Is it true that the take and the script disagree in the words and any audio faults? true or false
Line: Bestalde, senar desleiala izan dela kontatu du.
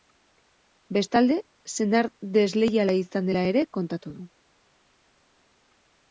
true